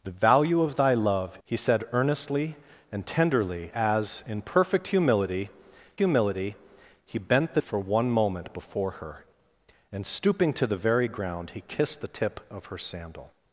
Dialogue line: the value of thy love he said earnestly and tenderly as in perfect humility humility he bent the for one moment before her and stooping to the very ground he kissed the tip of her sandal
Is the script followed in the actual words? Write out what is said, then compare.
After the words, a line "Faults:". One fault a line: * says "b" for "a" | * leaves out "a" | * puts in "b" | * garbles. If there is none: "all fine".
the value of thy love he said earnestly and tenderly as in perfect humility humility he bent the for one moment before her and stooping to the very ground he kissed the tip of her sandal
Faults:
all fine